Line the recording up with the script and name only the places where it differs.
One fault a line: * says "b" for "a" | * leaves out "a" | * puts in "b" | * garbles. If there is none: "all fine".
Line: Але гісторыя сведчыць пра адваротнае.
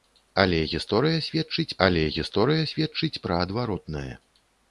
* puts in "але гісторыя сведчыць"